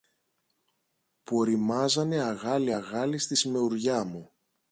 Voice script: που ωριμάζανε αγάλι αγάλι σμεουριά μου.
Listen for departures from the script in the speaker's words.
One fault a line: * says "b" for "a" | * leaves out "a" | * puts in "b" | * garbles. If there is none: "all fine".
* puts in "στη"